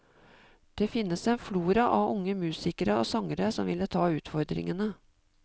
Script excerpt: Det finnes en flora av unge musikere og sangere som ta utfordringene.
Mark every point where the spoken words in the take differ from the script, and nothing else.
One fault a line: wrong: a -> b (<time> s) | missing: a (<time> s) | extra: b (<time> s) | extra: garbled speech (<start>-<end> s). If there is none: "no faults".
extra: ville (3.7 s)